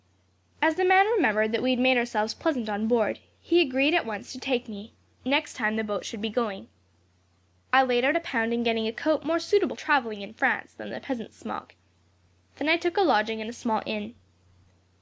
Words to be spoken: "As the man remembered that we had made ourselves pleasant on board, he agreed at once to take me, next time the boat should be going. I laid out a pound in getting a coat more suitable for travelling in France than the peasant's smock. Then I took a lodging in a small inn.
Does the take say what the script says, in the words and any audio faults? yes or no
no